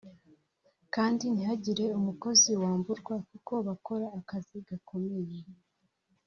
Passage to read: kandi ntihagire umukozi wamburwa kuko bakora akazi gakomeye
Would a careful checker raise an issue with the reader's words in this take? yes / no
no